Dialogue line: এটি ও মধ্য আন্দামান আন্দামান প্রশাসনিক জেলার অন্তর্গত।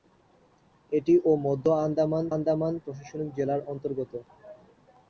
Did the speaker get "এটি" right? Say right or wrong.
right